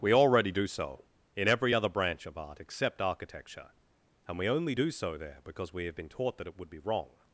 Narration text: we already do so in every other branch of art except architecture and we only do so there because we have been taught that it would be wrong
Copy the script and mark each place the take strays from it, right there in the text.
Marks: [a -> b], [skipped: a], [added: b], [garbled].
we already do so in every other branch of art except architecture and we only do so there because we have been taught that it would be wrong